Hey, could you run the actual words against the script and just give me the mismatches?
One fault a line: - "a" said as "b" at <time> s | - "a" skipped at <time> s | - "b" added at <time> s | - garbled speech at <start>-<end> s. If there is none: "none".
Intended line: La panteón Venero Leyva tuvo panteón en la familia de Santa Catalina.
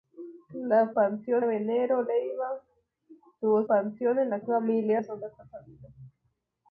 none